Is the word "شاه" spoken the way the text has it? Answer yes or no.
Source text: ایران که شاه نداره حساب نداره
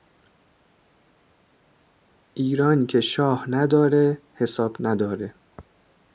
yes